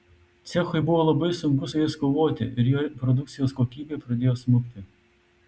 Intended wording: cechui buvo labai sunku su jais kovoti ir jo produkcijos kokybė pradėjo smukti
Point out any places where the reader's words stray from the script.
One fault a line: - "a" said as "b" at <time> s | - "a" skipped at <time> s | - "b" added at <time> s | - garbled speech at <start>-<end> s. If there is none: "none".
none